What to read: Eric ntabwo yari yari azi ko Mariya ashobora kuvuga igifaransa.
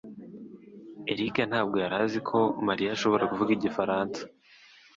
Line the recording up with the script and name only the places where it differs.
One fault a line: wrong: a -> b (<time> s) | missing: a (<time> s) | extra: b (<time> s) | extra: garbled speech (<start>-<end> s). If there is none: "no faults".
missing: yari (1.9 s)